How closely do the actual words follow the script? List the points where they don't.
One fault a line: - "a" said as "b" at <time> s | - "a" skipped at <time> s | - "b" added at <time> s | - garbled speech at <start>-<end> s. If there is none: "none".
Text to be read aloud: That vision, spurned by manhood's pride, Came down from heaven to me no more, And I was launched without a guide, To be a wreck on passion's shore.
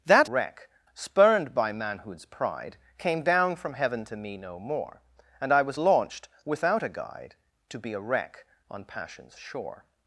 - "vision" said as "wreck" at 0.2 s